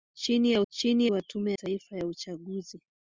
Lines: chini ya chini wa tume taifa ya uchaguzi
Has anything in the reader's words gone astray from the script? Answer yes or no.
no